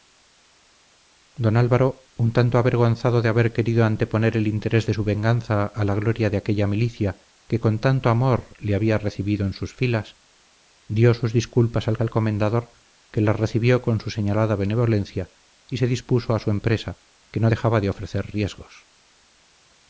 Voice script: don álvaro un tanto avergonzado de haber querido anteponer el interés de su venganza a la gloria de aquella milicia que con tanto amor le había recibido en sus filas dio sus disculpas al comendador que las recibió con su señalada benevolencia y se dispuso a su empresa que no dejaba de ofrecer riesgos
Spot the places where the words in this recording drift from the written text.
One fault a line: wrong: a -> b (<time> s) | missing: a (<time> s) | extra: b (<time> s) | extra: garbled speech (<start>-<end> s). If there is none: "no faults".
extra: al (12.0 s)